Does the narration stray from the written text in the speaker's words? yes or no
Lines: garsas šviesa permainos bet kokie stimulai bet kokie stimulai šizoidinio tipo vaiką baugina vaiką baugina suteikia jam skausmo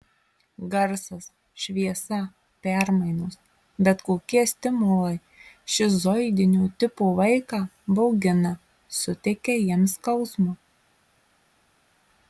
yes